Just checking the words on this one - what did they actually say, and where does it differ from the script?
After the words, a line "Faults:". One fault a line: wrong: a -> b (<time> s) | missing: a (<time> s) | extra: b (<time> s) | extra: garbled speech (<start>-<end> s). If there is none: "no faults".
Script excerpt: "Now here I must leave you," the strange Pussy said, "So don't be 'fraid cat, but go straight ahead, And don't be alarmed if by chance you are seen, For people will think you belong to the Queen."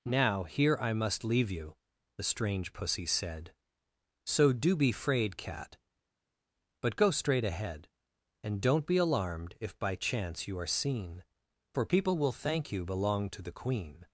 "Now here I must leave you," the strange Pussy said, "So do be 'fraid cat, but go straight ahead, And don't be alarmed if by chance you are seen, For people will thank you belong to the Queen."
Faults:
wrong: don't -> do (4.5 s)
wrong: think -> thank (12.3 s)